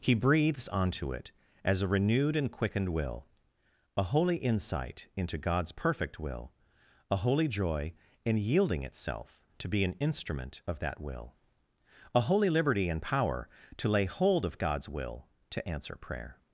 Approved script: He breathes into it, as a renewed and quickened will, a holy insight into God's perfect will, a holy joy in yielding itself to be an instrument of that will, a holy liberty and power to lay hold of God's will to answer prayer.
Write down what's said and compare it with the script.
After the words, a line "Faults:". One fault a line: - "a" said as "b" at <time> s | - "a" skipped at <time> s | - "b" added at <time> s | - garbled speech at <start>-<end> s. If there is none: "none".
He breathes onto it, as a renewed and quickened will, a holy insight into God's perfect will, a holy joy in yielding itself to be an instrument of that will, a holy liberty and power to lay hold of God's will to answer prayer.
Faults:
- "into" said as "onto" at 0.7 s